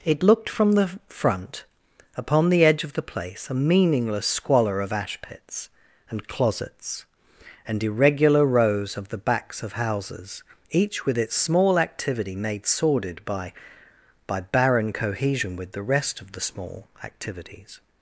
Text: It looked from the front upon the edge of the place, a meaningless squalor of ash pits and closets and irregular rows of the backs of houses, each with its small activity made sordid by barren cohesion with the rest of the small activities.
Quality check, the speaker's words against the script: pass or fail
fail